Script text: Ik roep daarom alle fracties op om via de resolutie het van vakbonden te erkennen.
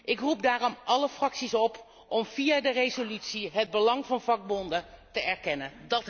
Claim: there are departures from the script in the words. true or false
true